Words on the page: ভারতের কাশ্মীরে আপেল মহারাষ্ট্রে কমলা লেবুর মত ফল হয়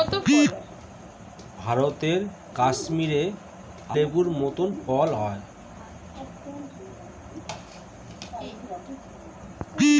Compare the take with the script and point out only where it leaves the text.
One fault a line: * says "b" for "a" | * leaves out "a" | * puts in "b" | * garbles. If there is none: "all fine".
* leaves out "আপেল মহারাষ্ট্রে কমলা"